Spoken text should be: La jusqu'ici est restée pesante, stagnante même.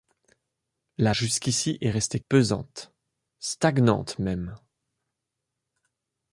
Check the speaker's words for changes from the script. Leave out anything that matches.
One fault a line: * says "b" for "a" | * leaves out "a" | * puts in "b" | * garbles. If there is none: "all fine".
all fine